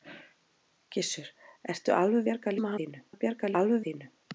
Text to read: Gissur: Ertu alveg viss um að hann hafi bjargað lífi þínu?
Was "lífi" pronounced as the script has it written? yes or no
no